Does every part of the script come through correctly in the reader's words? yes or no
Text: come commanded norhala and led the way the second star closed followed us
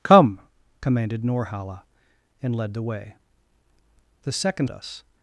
no